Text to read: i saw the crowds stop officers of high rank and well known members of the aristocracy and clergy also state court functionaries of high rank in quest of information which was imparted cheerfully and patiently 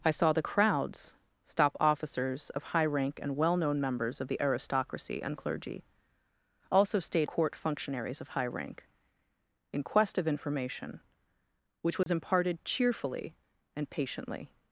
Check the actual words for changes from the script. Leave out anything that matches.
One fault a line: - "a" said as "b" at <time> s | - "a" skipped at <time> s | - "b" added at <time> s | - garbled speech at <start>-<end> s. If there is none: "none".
none